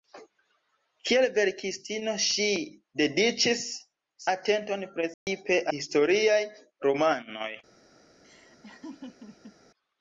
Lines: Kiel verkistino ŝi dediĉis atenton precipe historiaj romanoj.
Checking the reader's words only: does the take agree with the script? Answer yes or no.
yes